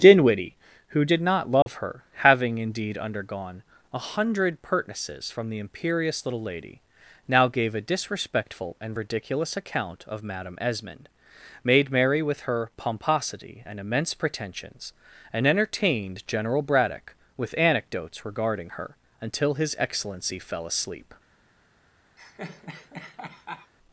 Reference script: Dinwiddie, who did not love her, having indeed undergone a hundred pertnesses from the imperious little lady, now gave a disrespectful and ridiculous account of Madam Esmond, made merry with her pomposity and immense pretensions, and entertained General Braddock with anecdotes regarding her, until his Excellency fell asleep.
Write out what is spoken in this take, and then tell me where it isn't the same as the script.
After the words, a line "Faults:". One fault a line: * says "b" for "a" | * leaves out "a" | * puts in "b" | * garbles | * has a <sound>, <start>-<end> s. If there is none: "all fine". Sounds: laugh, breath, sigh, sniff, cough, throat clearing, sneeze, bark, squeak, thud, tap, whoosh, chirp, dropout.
Dinwiddie, who did not love her, having indeed undergone a hundred pertnesses from the imperious little lady, now gave a disrespectful and ridiculous account of Madam Esmond, made merry with her pomposity and immense pretensions, and entertained General Braddock with anecdotes regarding her, until his Excellency fell asleep.
Faults:
* has a dropout, 1.6-1.7 s
* has a laugh, 22.2-23.7 s